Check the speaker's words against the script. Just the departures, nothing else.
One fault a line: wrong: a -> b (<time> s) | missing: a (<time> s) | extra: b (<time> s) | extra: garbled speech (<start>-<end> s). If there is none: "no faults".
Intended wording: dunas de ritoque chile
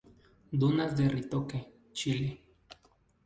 no faults